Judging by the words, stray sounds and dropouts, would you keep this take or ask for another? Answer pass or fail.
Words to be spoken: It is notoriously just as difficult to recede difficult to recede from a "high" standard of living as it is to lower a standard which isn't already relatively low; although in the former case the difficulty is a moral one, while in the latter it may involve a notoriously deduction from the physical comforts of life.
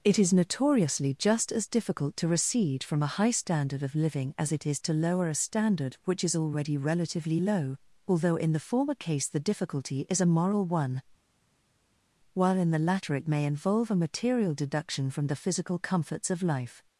fail